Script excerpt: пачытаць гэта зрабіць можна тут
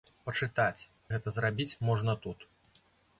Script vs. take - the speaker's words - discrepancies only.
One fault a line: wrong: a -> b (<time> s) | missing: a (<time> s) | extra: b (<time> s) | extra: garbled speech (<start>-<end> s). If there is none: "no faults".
no faults